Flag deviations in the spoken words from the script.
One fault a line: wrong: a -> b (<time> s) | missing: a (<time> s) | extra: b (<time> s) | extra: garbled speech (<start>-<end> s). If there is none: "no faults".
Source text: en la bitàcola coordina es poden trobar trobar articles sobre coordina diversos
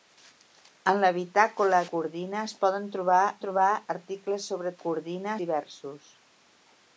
no faults